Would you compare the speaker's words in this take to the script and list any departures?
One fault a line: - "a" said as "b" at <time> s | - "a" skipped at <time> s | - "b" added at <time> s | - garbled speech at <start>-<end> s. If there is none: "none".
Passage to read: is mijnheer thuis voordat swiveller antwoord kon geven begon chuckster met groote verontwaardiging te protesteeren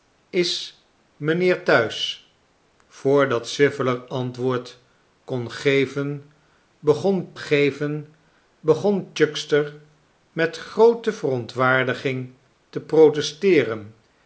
- "geven begon" added at 7.4 s